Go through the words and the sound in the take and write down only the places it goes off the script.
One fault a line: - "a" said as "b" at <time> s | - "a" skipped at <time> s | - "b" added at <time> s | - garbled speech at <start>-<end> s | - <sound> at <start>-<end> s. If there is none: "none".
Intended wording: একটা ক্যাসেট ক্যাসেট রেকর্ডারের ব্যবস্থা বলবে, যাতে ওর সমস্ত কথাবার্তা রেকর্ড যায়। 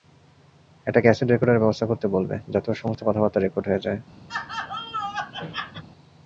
- "ক্যাসেট" skipped at 1.3 s
- "করতে" added at 1.9 s
- "হয়ে" added at 3.7 s
- laugh at 4.3-5.8 s